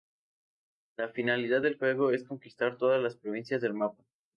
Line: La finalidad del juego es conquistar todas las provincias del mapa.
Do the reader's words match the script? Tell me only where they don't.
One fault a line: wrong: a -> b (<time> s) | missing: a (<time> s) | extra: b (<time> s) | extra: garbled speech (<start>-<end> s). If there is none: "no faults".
no faults